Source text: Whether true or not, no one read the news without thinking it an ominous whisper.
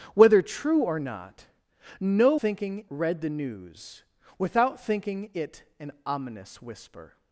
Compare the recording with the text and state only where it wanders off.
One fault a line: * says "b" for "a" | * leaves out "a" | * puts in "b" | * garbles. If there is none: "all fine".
* says "thinking" for "one"